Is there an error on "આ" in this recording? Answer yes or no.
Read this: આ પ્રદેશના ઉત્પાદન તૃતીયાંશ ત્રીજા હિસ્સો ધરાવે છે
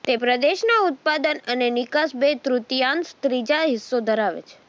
yes